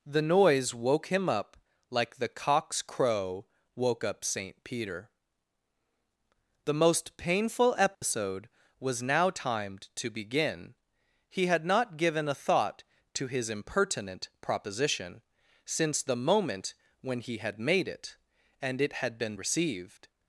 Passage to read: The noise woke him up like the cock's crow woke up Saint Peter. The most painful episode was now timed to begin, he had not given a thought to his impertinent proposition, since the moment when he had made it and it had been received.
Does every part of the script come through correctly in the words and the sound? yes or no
no